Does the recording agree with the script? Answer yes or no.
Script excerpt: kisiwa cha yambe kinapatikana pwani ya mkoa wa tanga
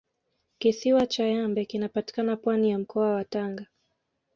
yes